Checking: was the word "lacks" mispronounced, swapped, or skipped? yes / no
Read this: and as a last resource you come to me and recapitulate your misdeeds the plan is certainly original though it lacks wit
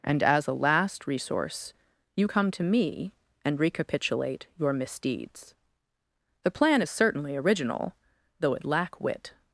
yes